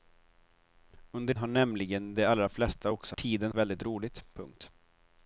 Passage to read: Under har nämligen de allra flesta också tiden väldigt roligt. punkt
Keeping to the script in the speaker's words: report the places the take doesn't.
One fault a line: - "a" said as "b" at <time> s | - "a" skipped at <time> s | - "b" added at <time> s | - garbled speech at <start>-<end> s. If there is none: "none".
none